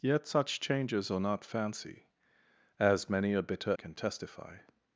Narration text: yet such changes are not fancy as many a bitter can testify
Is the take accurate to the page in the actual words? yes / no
yes